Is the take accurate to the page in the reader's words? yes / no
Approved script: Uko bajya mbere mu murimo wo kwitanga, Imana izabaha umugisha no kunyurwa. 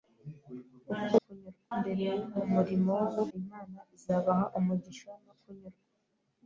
no